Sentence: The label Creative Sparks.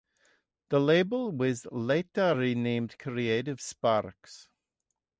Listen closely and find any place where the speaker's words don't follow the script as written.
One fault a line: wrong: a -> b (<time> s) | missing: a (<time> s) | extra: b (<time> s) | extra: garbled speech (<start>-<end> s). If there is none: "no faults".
extra: was later renamed (1.3 s)